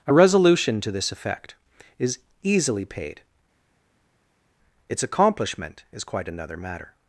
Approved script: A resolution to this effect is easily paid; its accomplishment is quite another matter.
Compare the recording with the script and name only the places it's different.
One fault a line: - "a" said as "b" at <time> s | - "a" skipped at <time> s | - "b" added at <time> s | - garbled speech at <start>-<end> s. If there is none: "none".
none